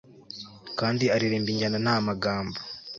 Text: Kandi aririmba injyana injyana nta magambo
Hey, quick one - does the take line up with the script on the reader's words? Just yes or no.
no